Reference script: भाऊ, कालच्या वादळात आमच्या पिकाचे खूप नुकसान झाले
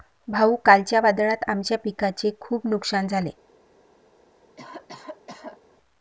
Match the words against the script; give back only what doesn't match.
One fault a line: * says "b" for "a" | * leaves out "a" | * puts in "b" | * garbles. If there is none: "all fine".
all fine